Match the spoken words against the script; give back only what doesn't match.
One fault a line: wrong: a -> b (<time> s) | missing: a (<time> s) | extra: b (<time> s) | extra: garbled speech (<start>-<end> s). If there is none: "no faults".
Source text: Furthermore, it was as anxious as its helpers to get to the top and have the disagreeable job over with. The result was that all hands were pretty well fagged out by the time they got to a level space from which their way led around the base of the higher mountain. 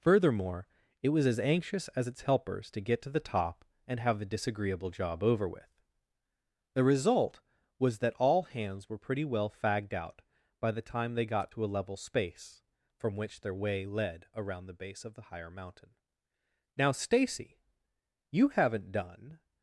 extra: Now Stacy you haven't done (16.8 s)